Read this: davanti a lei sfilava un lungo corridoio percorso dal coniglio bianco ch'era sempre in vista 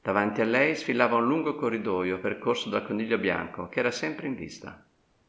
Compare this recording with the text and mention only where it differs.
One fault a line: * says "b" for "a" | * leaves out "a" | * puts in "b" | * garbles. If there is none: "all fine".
all fine